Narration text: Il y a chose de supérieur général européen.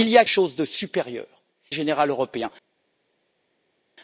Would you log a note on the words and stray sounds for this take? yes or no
no